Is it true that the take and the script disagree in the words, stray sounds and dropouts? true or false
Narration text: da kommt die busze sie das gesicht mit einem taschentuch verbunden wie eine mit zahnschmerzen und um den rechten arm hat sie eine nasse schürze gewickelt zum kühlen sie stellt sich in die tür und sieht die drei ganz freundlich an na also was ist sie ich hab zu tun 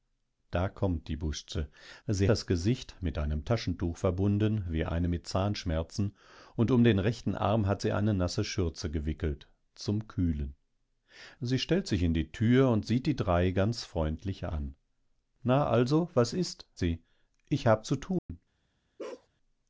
true